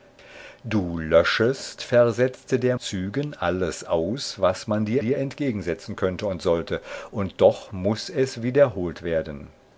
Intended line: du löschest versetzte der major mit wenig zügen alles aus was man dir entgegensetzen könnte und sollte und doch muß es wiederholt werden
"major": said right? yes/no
no